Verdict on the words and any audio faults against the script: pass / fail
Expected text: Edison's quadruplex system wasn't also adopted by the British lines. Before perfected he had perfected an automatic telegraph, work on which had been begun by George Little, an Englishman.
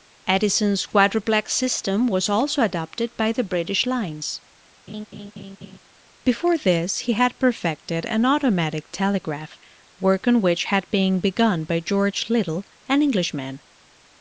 fail